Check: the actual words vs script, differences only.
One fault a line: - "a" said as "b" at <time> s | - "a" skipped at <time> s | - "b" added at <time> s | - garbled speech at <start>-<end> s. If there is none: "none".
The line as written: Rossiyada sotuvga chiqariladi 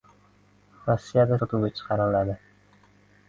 none